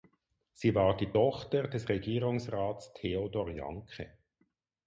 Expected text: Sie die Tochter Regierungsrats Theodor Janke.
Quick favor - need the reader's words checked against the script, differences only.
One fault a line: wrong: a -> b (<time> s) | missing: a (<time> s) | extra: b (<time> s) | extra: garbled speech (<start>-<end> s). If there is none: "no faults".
extra: war (0.7 s)
extra: des (1.7 s)